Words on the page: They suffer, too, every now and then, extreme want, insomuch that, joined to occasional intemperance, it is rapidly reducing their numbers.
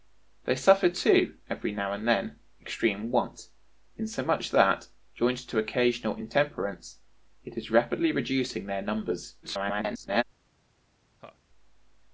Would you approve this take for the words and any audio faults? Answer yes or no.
no